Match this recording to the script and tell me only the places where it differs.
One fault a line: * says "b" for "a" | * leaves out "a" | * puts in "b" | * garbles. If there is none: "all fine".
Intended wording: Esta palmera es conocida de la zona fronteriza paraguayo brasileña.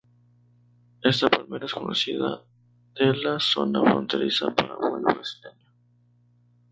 all fine